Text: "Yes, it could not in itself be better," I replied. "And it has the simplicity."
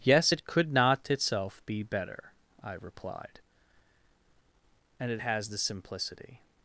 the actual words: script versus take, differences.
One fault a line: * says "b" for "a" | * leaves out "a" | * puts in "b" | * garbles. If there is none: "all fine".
* leaves out "in"